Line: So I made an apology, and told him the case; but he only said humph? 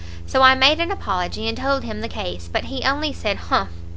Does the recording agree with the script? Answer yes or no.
yes